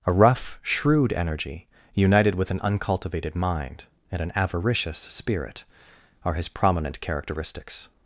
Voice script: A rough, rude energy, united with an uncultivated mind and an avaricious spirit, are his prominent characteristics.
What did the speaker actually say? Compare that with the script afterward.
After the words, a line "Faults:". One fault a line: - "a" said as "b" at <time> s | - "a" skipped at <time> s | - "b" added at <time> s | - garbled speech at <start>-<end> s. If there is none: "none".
A rough, shrewd energy, united with an uncultivated mind and an avaricious spirit, are his prominent characteristics.
Faults:
- "rude" said as "shrewd" at 0.6 s